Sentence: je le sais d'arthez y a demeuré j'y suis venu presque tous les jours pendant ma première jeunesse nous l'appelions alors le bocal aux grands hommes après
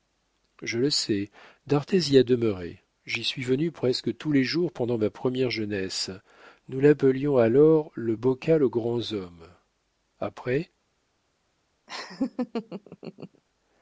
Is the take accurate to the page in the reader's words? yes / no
yes